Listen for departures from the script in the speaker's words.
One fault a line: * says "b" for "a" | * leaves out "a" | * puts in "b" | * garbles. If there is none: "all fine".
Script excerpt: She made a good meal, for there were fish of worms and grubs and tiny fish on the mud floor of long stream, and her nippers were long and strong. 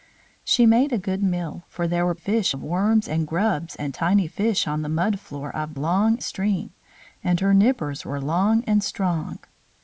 all fine